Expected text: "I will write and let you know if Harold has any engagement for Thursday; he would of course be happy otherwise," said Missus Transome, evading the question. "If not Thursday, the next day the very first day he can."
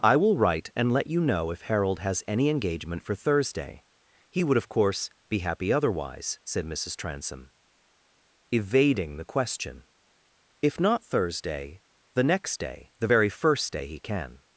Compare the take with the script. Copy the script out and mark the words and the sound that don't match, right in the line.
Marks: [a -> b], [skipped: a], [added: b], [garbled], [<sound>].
"I will write and let you know if Harold has any engagement for Thursday; he would of course be happy otherwise," said Missus Transome, evading the question. "If not Thursday, the next day the very first day he can."